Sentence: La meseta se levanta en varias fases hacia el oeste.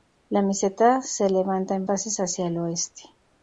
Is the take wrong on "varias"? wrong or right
wrong